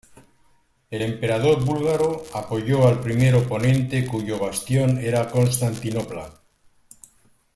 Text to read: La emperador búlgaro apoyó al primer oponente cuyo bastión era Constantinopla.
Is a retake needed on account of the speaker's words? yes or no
yes